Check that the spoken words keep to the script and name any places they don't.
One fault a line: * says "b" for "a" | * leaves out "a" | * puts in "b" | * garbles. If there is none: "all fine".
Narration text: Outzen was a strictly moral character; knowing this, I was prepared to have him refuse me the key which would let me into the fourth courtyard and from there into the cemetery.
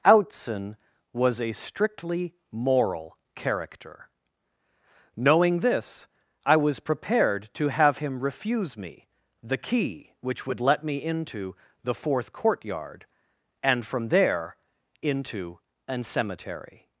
* says "an" for "the"